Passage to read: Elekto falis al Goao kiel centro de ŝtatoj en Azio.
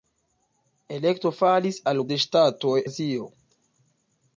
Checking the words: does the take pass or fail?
fail